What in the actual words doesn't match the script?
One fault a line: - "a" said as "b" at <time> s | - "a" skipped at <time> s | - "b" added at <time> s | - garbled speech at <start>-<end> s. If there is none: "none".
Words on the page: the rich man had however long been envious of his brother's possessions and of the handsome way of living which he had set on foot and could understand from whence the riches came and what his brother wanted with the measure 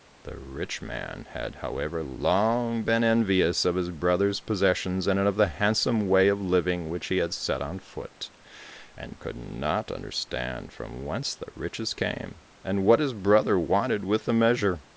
- "not" added at 9.3 s